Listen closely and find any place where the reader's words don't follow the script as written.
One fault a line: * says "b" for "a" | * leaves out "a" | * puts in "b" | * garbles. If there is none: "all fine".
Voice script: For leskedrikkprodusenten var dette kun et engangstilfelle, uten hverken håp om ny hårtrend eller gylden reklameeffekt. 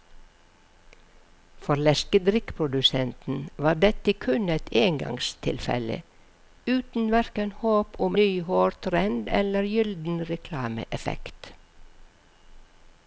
all fine